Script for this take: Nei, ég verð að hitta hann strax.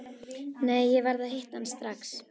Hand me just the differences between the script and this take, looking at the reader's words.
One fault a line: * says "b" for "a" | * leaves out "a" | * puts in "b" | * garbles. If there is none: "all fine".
all fine